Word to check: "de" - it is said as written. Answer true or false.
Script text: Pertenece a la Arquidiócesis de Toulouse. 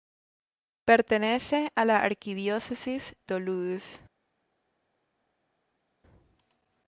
false